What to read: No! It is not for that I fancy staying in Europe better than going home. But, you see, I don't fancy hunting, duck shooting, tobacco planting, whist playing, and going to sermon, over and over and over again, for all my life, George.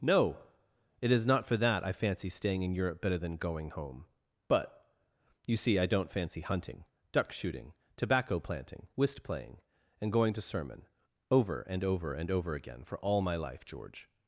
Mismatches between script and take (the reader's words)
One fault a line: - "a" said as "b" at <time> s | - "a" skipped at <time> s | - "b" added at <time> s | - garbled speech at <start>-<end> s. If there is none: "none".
none